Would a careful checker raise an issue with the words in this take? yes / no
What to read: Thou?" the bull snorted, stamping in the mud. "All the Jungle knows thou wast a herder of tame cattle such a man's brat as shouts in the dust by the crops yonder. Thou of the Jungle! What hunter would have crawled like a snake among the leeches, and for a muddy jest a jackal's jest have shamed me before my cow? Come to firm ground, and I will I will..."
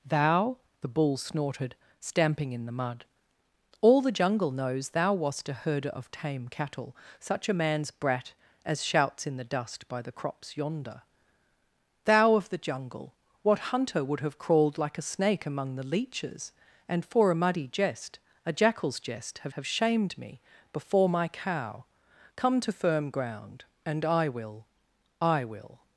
yes